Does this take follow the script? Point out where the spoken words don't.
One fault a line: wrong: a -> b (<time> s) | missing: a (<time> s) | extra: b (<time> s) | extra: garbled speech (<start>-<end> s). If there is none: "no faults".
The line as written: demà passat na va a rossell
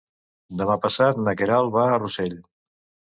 extra: queralt (1.4 s)